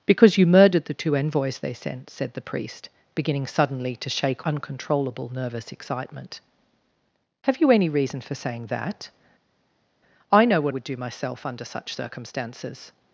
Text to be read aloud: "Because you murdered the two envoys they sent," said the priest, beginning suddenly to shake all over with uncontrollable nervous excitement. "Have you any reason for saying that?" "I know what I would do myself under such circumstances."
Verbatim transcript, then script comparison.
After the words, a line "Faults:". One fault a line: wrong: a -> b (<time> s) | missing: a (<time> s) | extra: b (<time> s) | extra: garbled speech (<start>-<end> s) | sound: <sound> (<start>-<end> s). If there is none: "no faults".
"Because you murdered the two envoys they sent," said the priest, beginning suddenly to shake uncontrollable nervous excitement. "Have you any reason for saying that?" "I know what would do myself under such circumstances."
Faults:
missing: all over with (4.5 s)
missing: I (10.7 s)